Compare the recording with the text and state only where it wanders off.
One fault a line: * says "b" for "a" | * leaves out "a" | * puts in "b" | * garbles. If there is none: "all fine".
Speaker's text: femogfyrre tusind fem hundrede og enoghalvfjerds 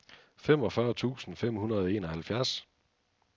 all fine